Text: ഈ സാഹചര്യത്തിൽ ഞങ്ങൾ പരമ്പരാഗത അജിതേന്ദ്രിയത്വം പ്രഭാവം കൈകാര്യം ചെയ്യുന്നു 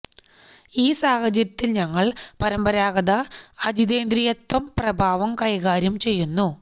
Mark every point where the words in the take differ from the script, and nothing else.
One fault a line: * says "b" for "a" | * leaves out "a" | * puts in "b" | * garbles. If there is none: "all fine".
all fine